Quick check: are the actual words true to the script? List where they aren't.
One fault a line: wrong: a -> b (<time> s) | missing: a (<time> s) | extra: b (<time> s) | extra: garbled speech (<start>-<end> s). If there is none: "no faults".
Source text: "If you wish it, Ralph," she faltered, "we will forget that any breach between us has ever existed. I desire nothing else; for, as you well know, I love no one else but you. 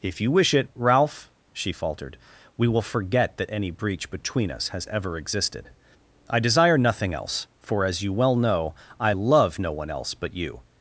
no faults